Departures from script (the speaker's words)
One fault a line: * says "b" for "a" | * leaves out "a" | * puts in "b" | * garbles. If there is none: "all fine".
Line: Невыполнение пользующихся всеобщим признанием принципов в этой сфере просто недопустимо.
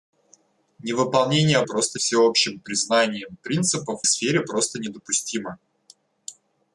* says "просто" for "пользующихся"
* leaves out "этой"